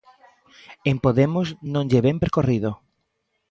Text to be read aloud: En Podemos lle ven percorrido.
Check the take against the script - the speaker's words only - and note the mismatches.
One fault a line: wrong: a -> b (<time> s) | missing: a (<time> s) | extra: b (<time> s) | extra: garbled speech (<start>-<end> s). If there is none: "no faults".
extra: non (1.7 s)